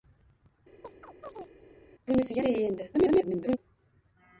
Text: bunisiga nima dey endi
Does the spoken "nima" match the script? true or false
false